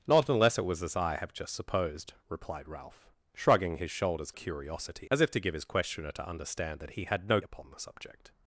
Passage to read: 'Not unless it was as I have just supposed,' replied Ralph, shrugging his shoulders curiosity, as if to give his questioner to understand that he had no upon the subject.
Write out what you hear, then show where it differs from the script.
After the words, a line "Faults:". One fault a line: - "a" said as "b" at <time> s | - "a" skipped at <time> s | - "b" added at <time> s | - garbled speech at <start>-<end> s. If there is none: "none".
'Not unless it was as I have just supposed,' replied Ralph, shrugging his shoulders curiosity, as if to give his questioner to understand that he had no upon the subject.
Faults:
none